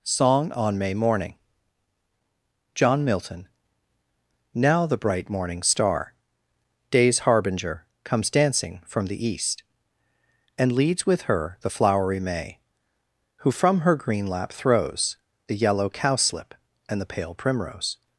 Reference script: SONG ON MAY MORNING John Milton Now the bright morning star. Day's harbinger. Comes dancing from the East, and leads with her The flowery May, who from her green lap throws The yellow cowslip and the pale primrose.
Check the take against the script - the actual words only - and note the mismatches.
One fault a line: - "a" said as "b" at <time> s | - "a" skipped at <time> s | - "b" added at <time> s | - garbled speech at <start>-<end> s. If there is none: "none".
none